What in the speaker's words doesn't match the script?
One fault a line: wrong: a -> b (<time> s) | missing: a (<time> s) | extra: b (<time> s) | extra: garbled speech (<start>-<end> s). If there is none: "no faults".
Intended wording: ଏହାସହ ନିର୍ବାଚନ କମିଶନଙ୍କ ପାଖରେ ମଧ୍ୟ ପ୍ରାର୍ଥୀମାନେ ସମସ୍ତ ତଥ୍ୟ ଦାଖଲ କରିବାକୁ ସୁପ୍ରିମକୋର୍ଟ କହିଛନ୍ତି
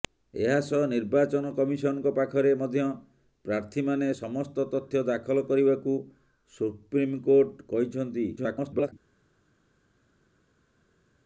extra: garbled speech (8.4-8.9 s)